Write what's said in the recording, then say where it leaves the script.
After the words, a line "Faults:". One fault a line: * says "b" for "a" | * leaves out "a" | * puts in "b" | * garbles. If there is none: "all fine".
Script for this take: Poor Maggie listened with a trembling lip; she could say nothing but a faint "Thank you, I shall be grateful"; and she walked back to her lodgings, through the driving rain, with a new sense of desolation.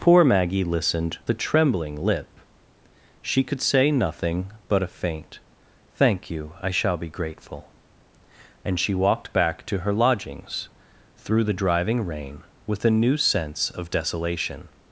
Poor Maggie listened a trembling lip; she could say nothing but a faint "Thank you, I shall be grateful"; and she walked back to her lodgings, through the driving rain, with a new sense of desolation.
Faults:
* leaves out "with"